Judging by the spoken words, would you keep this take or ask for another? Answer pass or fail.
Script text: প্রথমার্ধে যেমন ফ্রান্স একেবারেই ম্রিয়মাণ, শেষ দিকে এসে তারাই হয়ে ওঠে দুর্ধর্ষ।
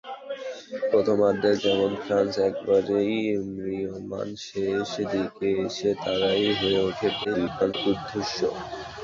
fail